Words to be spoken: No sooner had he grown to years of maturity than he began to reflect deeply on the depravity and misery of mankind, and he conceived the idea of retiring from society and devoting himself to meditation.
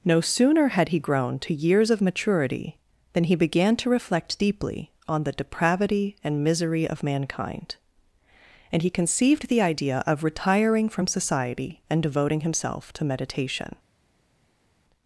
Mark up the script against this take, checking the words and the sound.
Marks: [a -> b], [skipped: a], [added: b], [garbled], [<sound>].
No sooner had he grown to years of maturity than he began to reflect deeply on the depravity and misery of mankind, and he conceived the idea of retiring from society and devoting himself to meditation.